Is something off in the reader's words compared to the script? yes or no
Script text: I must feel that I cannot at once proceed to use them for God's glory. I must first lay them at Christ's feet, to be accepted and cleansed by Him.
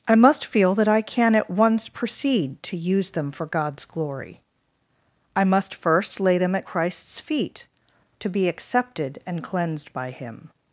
yes